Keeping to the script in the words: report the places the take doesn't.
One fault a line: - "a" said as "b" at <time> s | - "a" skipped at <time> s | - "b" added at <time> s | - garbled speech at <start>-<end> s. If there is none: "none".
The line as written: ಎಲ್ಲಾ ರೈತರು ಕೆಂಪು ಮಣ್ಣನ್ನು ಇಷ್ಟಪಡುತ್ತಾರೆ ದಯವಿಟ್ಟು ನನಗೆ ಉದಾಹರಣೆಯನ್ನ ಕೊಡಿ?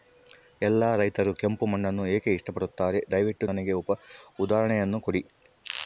- "ಏಕೆ" added at 2.1 s